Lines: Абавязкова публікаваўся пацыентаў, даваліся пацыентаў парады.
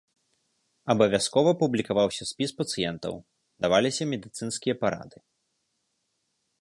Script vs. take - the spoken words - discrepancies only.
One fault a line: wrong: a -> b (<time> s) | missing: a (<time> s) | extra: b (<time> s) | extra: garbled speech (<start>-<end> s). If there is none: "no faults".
extra: спіс (2.3 s)
wrong: пацыентаў -> медыцынскія (4.2 s)